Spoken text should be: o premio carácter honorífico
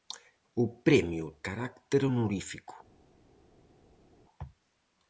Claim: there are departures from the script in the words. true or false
false